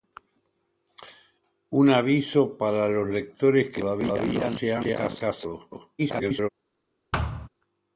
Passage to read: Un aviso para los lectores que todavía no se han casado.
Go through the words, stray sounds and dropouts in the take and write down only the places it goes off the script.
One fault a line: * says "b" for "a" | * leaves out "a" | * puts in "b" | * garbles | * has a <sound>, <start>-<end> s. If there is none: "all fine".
* garbles
* has a thud, 7.1-7.5 s